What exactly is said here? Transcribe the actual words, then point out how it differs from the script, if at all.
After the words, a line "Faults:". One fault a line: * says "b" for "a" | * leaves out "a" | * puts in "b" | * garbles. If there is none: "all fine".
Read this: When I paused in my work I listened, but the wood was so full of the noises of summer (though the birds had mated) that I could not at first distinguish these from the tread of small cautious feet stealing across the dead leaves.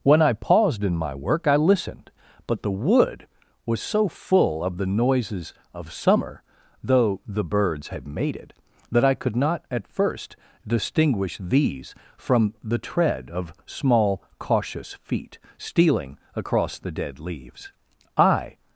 When I paused in my work I listened, but the wood was so full of the noises of summer (though the birds had mated) that I could not at first distinguish these from the tread of small cautious feet stealing across the dead leaves. I
Faults:
* puts in "I"